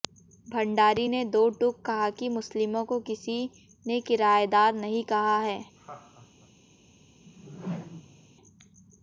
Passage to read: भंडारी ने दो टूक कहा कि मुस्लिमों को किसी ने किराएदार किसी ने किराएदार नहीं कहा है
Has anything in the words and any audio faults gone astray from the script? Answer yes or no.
yes